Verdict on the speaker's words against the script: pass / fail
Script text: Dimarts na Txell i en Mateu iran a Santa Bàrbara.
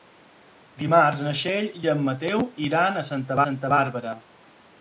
fail